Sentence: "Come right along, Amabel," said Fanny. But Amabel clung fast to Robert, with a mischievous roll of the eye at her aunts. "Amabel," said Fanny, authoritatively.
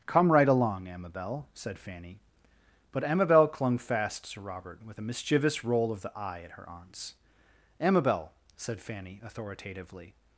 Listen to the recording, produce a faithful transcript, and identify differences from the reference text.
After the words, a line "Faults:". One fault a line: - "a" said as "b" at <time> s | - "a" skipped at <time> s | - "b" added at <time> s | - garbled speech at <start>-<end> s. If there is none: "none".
"Come right along, Amabel," said Fanny. But Amabel clung fast to Robert, with a mischievous roll of the eye at her aunts. "Amabel," said Fanny, authoritatively.
Faults:
none